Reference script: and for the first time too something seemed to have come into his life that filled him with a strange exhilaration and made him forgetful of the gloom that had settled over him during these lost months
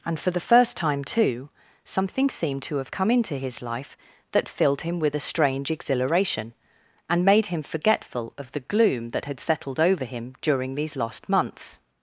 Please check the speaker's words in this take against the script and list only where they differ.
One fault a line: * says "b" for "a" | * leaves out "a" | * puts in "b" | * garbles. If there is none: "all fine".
all fine